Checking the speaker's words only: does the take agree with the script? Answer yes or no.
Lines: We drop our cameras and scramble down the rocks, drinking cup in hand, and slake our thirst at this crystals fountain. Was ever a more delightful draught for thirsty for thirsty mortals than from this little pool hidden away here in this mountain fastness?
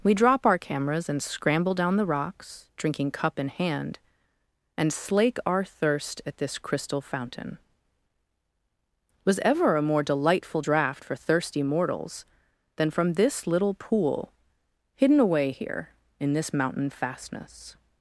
no